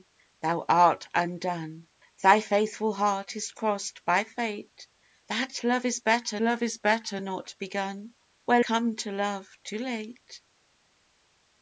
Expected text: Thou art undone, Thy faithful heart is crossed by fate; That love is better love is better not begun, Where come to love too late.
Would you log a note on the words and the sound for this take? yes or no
no